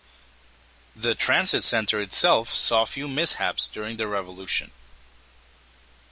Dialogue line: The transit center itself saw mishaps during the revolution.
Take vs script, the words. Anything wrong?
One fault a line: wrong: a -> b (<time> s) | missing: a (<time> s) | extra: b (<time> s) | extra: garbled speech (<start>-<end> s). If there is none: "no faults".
extra: few (2.9 s)